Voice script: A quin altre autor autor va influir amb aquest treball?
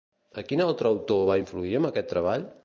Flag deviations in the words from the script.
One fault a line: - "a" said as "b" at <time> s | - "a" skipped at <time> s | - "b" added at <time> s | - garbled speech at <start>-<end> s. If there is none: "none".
- "autor" skipped at 1.3 s